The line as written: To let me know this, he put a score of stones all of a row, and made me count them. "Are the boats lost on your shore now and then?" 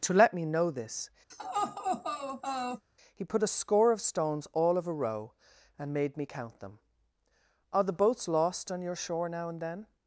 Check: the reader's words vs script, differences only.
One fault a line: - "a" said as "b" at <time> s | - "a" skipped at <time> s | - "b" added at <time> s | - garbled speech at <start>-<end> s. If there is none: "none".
none